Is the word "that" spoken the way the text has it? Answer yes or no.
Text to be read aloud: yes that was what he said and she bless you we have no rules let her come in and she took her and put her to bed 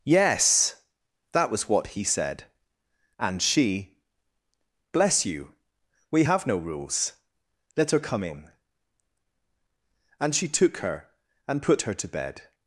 yes